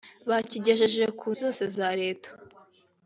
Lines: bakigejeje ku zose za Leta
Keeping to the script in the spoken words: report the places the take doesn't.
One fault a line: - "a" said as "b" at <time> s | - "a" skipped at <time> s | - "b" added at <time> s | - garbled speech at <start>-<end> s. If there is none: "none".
none